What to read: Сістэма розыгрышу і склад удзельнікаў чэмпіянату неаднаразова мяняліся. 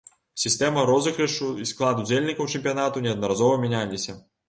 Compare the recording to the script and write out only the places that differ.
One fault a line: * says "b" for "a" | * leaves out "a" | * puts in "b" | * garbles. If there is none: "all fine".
all fine